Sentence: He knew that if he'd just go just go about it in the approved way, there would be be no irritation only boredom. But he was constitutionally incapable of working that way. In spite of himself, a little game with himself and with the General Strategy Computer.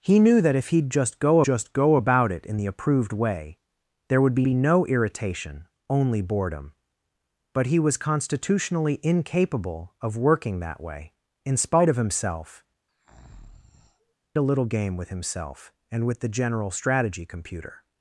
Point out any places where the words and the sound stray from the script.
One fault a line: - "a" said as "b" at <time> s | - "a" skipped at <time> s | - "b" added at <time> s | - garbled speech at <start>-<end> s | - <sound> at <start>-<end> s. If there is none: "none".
- breath at 12.9-14.1 s